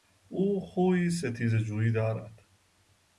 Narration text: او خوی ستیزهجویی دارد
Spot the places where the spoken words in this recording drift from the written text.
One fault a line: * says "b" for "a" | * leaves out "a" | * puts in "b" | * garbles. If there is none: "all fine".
all fine